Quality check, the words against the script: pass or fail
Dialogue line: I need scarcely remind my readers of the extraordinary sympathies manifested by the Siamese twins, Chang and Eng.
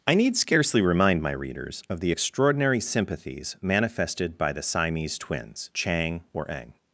fail